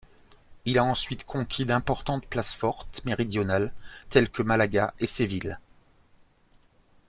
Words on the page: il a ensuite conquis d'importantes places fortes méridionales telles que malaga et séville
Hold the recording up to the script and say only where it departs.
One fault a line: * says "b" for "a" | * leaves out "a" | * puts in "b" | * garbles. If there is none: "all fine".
all fine